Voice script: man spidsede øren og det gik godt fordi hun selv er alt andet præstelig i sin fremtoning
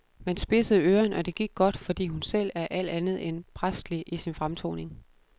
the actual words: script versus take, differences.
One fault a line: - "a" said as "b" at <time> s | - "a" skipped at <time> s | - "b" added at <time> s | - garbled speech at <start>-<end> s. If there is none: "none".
- "end" added at 3.3 s